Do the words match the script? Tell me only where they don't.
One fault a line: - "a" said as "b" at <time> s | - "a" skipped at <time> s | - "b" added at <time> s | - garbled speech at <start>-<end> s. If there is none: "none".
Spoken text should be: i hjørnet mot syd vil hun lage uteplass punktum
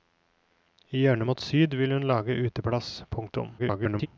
- garbled speech at 3.6-4.1 s